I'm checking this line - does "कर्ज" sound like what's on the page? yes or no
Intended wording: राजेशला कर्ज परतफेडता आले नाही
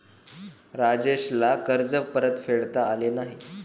yes